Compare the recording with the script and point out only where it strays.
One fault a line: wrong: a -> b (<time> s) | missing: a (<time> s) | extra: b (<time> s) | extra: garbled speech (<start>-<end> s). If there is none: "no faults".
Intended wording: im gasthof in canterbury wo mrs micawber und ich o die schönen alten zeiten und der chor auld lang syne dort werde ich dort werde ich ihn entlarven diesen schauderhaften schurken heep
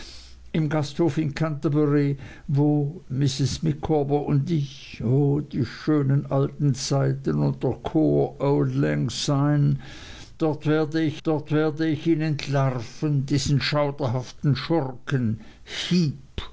no faults